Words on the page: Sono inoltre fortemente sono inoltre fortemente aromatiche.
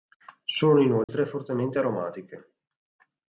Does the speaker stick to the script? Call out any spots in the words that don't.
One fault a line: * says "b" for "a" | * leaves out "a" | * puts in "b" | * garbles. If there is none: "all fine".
* leaves out "sono inoltre fortemente"